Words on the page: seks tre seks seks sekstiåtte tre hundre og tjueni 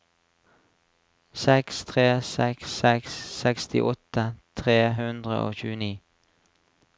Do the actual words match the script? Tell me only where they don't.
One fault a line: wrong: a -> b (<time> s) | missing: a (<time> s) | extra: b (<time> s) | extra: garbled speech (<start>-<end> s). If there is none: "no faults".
no faults